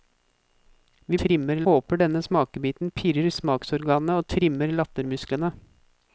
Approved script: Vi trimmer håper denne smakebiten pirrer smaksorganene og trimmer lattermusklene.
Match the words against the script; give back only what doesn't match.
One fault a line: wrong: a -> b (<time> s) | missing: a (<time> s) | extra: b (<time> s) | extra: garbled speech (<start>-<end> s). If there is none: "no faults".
no faults